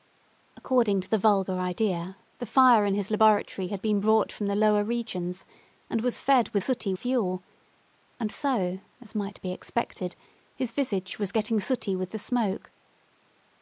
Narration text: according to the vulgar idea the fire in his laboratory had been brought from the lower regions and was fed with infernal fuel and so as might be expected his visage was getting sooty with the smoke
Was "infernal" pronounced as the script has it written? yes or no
no